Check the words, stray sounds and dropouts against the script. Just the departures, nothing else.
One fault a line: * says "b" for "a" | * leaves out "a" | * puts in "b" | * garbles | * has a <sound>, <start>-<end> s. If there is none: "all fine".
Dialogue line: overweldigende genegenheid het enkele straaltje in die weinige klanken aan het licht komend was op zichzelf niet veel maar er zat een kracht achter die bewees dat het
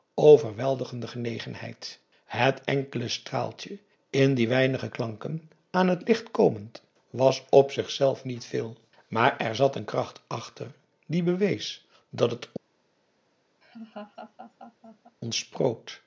* has a laugh, 13.6-15.2 s